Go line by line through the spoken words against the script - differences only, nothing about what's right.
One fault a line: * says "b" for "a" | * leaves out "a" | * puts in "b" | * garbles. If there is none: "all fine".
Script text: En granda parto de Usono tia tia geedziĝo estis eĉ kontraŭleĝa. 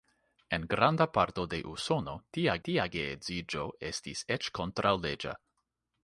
all fine